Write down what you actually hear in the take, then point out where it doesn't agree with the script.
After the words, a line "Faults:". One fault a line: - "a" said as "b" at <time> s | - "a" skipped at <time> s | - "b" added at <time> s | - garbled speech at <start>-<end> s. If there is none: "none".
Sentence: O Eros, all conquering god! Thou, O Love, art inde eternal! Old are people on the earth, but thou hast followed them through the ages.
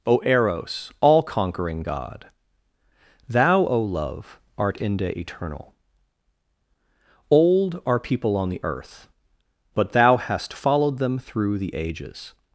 O Eros, all conquering god! Thou, O Love, art inde eternal! Old are people on the earth, but thou hast followed them through the ages.
Faults:
none